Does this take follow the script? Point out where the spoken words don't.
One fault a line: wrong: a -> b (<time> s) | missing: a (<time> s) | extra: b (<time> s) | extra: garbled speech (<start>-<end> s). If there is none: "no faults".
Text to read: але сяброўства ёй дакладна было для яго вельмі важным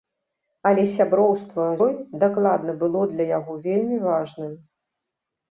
no faults